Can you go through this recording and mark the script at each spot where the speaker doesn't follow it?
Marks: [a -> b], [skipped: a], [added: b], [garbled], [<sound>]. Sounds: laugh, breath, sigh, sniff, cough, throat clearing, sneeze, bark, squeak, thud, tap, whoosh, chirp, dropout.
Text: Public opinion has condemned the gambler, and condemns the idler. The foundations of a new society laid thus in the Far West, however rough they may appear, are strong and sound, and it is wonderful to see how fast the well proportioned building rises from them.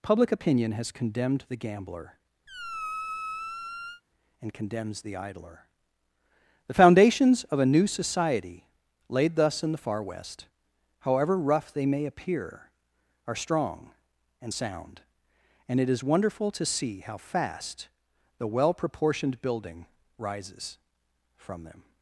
Public opinion has condemned the gambler, [squeak] and condemns the idler. The foundations of a new society laid thus in the Far West, however rough they may appear, are strong and sound, and it is wonderful to see how fast the well proportioned building rises from them.